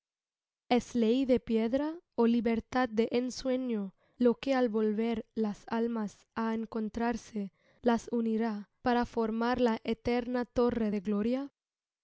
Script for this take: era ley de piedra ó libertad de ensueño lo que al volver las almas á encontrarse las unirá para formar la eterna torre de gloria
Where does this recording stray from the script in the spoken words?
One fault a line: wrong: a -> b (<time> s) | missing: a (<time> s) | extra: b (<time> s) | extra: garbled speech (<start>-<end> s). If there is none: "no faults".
wrong: era -> es (0.7 s)